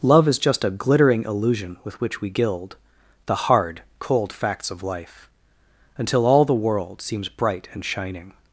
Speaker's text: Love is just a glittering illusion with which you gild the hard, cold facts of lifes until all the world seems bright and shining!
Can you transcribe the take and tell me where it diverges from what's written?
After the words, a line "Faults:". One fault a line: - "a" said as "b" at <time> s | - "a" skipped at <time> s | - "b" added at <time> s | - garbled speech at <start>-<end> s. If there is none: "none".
Love is just a glittering illusion with which we gild the hard, cold facts of life until all the world seems bright and shining!
Faults:
- "you" said as "we" at 2.2 s
- "lifes" said as "life" at 4.8 s